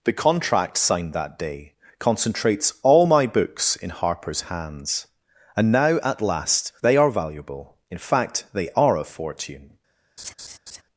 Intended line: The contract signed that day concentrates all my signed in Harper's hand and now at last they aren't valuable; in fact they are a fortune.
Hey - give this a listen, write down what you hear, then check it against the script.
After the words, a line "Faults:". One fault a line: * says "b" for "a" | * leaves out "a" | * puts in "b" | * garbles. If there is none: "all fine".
The contract signed that day concentrates all my books in Harper's hands and now at last they are valuable; in fact they are a fortune.
Faults:
* says "books" for "signed"
* says "hands" for "hand"
* says "are" for "aren't"